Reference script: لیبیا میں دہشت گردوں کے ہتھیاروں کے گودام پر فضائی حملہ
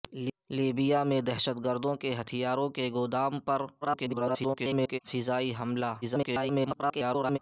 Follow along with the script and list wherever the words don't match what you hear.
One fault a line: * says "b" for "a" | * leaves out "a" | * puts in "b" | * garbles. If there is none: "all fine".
* garbles
* garbles